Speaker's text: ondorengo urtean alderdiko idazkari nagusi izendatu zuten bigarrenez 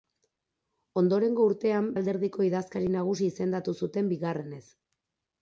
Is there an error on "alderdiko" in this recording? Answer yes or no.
no